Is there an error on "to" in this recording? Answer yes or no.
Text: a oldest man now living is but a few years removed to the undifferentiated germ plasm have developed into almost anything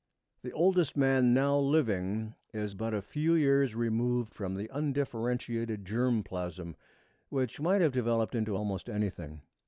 yes